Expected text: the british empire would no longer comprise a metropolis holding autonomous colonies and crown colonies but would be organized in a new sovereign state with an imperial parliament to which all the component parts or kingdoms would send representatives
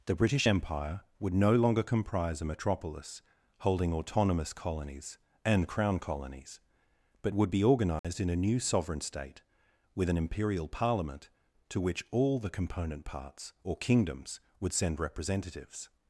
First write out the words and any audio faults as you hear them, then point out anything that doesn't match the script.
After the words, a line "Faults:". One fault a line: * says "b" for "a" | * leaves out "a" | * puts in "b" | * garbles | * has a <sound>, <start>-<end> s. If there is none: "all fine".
the british empire would no longer comprise a metropolis holding autonomous colonies and crown colonies but would be organized in a new sovereign state with an imperial parliament to which all the component parts or kingdoms would send representatives
Faults:
* has a dropout, 8.0-8.0 s